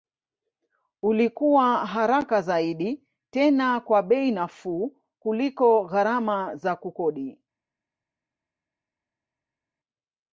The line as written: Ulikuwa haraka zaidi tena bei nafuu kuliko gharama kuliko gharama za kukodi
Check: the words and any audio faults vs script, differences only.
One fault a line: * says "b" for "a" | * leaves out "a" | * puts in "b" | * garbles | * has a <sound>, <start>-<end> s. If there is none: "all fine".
* puts in "kwa"
* leaves out "kuliko gharama"